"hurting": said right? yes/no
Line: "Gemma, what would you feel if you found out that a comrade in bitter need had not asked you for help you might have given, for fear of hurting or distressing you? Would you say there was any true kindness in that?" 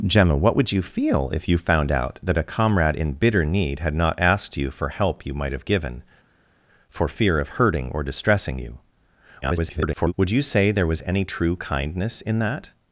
yes